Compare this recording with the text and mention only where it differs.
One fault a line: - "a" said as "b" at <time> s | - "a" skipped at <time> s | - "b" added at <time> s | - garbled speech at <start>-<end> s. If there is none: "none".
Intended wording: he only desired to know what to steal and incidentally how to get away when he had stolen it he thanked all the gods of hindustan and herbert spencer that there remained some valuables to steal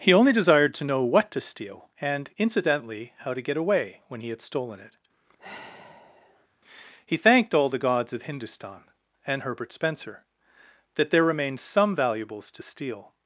none